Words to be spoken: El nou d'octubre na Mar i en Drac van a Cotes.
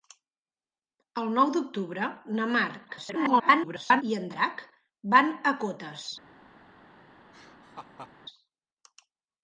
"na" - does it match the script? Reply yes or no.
yes